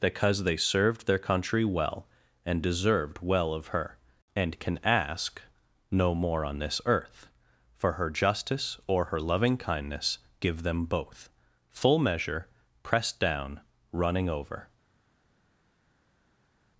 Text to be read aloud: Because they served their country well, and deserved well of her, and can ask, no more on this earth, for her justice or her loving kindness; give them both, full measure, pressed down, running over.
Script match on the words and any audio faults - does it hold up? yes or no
yes